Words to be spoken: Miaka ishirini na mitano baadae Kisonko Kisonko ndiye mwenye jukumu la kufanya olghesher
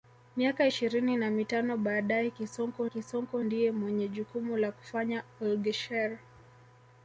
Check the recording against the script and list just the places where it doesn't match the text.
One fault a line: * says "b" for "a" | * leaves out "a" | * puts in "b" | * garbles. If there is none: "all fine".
all fine